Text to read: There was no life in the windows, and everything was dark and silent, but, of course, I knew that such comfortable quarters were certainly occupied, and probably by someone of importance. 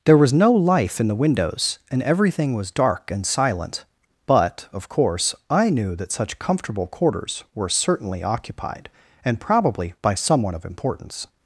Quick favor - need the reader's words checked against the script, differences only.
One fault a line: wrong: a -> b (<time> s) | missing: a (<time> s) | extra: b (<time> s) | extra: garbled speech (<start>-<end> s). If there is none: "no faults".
no faults